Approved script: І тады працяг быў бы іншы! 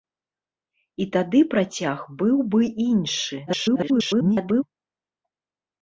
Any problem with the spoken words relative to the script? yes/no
yes